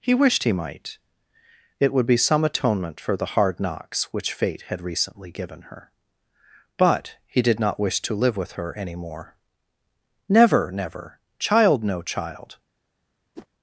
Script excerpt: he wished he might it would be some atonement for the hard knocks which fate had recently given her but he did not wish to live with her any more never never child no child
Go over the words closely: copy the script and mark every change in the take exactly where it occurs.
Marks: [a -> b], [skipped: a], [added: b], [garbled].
he wished he might it would be some atonement for the hard knocks which fate had recently given her but he did not wish to live with her any more never never child no child